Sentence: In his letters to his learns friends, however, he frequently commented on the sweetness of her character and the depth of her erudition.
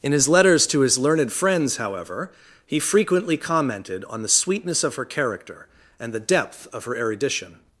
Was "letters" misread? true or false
false